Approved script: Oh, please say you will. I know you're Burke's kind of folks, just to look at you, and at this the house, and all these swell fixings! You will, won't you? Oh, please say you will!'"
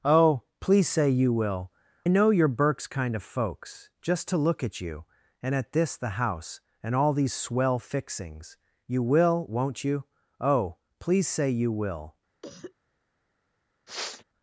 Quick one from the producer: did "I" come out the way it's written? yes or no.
no